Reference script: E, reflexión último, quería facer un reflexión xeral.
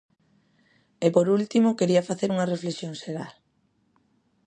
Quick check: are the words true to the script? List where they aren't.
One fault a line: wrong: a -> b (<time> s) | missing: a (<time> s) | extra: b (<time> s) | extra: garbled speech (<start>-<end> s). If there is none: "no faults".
wrong: reflexión -> por (1.1 s)
wrong: un -> unha (2.3 s)